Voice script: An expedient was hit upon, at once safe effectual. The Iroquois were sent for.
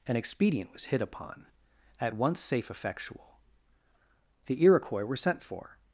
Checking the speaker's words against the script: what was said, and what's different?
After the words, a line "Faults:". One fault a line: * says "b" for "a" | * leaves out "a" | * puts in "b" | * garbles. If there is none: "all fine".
An expedient was hit upon, at once safe effectual. The Iroquois were sent for.
Faults:
all fine